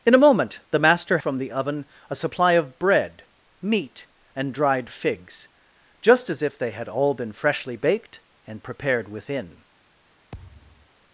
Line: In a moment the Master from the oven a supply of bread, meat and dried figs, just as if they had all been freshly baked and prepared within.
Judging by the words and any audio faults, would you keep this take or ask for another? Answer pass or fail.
fail